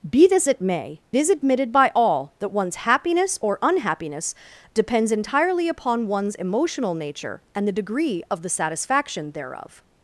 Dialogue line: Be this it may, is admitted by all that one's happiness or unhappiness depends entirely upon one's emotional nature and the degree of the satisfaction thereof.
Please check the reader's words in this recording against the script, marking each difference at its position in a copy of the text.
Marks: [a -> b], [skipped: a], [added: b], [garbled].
Be this it may, is admitted by all that one's happiness or unhappiness depends entirely upon one's emotional nature and the degree of the satisfaction thereof.